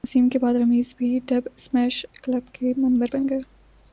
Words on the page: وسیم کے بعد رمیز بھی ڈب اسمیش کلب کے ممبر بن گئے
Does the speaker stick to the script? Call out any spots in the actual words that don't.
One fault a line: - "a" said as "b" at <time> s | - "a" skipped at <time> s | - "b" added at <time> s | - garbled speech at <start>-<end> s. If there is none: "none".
none